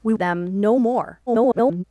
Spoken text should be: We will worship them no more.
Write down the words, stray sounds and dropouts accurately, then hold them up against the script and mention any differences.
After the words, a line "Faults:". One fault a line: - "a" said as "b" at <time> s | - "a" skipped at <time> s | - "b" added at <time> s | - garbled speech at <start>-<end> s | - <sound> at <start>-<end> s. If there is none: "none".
We them no more. [garbled]
Faults:
- "will worship" skipped at 0.1 s
- garbled speech at 1.3-1.8 s